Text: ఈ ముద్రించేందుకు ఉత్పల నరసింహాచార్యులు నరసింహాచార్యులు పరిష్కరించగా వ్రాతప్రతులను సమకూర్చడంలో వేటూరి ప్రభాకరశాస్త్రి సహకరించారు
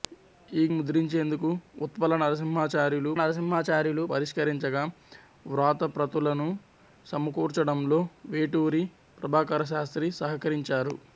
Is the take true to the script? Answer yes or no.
yes